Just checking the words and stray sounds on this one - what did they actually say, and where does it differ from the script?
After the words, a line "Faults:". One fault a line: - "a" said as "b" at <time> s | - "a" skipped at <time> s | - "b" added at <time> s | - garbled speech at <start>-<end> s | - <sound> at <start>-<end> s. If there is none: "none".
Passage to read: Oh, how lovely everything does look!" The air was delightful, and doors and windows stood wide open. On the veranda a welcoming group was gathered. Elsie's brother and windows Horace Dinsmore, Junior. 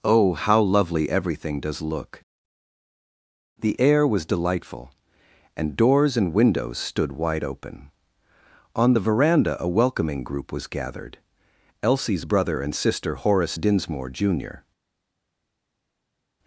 Oh, how lovely everything does look!" The air was delightful, and doors and windows stood wide open. On the veranda a welcoming group was gathered. Elsie's brother and sister Horace Dinsmore, Junior.
Faults:
- "windows" said as "sister" at 12.8 s